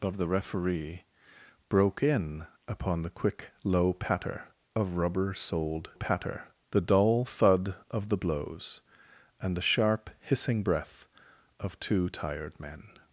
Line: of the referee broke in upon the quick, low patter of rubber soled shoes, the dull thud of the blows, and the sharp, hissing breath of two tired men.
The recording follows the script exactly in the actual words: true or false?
false